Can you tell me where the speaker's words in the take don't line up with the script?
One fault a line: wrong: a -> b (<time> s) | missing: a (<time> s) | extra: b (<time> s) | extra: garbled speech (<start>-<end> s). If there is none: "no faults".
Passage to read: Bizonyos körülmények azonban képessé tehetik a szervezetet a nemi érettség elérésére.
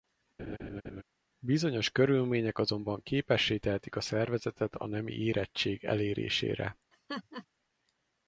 no faults